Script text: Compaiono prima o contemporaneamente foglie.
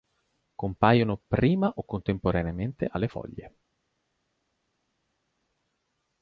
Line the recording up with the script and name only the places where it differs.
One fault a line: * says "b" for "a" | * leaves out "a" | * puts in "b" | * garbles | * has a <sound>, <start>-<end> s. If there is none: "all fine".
* puts in "alle"